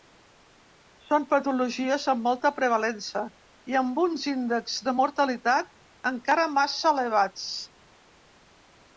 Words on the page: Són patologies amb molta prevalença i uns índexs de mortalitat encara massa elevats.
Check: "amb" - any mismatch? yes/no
no